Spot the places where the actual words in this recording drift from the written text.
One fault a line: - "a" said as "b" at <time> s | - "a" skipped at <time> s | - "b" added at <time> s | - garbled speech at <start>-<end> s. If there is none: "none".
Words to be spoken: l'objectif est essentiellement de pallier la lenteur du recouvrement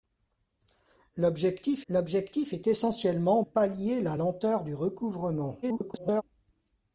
- "l'objectif" added at 1.9 s
- "de" skipped at 3.4 s
- garbled speech at 5.6-6.2 s